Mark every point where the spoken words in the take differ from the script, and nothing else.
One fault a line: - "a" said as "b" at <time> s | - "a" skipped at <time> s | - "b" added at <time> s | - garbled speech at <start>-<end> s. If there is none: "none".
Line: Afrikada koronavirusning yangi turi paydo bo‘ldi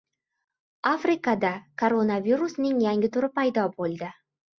none